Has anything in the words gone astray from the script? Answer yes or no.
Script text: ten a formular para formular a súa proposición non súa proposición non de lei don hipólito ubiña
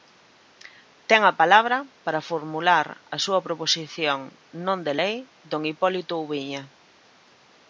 yes